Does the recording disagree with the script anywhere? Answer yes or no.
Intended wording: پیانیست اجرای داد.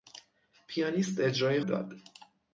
no